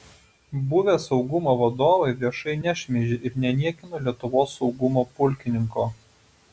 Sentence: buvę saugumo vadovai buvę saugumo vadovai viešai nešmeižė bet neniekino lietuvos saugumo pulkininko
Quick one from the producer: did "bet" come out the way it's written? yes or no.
no